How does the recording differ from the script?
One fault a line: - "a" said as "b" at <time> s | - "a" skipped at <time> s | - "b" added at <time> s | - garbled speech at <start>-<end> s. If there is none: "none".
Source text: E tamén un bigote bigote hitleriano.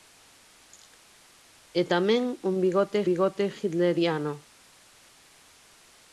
none